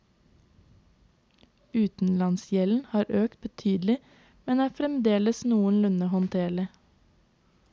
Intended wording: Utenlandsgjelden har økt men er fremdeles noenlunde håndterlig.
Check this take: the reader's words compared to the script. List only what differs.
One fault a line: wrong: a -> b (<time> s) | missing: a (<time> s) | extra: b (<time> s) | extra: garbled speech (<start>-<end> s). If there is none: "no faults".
extra: betydelig (3.4 s)